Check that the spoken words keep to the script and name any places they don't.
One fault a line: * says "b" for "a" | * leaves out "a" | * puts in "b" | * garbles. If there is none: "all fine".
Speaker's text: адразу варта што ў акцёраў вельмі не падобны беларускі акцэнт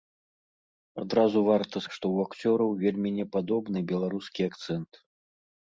all fine